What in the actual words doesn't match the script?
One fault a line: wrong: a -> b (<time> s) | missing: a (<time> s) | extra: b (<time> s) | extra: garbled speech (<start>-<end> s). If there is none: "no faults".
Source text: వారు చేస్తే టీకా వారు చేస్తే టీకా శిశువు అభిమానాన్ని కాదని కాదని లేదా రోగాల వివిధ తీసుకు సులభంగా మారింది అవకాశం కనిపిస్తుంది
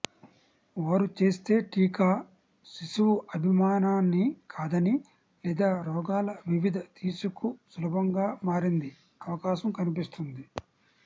missing: వారు చేస్తే టీకా (2.1 s)
missing: కాదని (5.0 s)